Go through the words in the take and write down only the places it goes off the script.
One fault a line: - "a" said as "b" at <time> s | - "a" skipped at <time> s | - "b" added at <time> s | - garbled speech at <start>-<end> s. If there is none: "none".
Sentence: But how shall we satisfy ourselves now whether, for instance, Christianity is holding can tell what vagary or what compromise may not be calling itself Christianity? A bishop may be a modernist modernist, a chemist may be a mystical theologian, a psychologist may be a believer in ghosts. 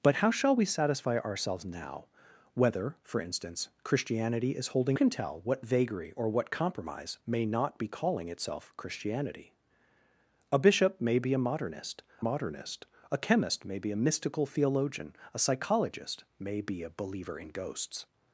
none